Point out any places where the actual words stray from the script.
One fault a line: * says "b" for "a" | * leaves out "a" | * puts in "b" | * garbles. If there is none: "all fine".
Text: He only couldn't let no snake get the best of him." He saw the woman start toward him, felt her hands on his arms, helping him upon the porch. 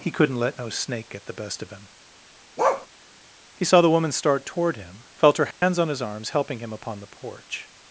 * leaves out "only"